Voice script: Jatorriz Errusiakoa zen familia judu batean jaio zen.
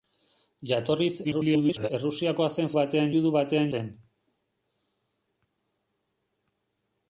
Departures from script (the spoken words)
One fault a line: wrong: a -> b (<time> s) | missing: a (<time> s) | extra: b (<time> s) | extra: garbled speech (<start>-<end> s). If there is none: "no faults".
extra: garbled speech (1.2-1.9 s)
wrong: familia -> batean (2.8 s)
missing: jaio (3.7 s)